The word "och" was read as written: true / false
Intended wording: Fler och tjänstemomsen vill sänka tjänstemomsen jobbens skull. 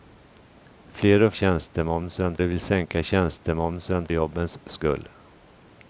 true